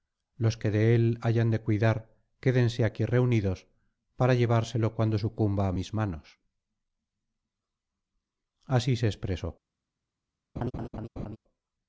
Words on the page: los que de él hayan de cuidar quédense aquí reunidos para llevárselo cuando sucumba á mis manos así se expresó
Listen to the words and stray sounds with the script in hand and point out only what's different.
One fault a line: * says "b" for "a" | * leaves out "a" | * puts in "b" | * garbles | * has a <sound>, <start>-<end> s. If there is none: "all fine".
* has a laugh, 10.6-11.4 s